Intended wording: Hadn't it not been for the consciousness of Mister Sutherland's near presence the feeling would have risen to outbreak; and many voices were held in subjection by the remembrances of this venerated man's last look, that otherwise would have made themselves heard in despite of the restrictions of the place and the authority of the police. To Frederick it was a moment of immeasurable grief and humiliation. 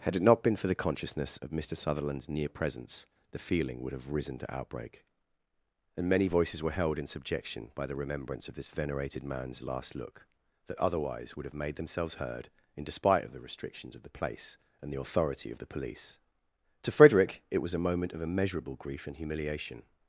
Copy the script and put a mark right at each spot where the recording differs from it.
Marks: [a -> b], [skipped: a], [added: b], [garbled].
[Hadn't -> Had] it not been for the consciousness of Mister Sutherland's near presence the feeling would have risen to outbreak; and many voices were held in subjection by the [remembrances -> remembrance] of this venerated man's last look, that otherwise would have made themselves heard in despite of the restrictions of the place and the authority of the police. To Frederick it was a moment of immeasurable grief and humiliation.